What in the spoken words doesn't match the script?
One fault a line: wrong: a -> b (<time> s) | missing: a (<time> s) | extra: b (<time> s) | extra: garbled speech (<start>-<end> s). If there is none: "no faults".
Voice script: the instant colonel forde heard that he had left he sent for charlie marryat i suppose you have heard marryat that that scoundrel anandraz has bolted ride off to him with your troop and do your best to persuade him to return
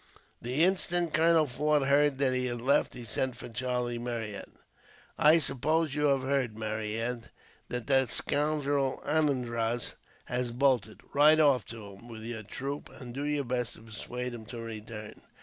no faults